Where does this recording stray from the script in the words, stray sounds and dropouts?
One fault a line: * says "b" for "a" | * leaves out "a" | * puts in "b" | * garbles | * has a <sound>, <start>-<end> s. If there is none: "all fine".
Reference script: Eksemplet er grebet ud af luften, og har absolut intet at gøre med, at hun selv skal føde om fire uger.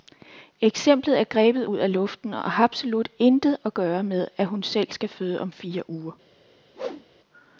* has a whoosh, 6.7-7.1 s